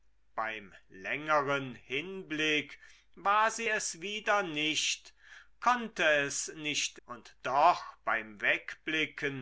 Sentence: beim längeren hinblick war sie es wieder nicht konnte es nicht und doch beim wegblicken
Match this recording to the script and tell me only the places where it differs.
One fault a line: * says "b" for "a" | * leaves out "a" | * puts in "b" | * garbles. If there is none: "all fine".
all fine